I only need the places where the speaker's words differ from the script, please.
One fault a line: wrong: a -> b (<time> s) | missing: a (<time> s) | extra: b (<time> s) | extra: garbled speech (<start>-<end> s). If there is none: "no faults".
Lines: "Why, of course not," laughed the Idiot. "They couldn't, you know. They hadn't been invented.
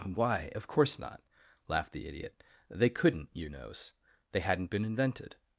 wrong: know -> knows (3.5 s)